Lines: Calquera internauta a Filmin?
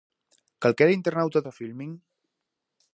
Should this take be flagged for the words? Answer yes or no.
no